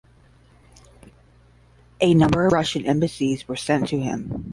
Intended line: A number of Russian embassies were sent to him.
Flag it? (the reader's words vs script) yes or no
yes